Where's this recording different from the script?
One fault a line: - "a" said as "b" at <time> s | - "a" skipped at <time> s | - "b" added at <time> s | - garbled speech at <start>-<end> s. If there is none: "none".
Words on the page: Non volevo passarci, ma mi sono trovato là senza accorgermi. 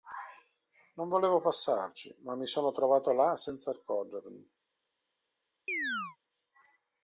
none